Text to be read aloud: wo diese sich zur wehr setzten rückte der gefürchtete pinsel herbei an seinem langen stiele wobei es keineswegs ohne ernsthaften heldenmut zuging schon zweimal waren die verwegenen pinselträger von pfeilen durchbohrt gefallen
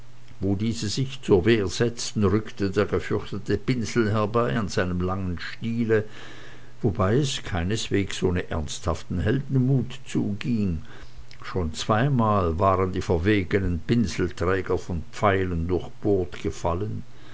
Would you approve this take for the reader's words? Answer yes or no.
yes